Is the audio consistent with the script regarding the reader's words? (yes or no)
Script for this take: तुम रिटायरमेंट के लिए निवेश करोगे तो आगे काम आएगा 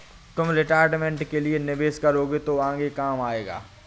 yes